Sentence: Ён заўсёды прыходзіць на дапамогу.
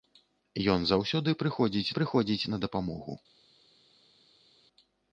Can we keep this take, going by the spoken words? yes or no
no